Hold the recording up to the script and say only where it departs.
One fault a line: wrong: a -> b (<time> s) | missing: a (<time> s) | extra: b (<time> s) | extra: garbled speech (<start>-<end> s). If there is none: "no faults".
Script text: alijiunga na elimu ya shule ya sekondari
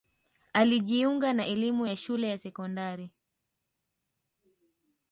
no faults